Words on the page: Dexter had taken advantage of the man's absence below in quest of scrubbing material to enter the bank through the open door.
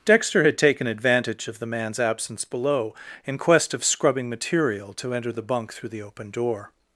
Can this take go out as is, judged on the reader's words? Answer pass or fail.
fail